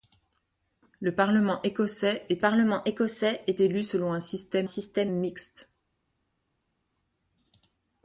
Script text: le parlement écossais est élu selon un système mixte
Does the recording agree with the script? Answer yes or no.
no